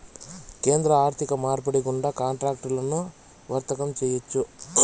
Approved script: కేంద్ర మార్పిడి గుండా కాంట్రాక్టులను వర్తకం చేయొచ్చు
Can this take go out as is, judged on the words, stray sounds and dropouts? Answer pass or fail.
fail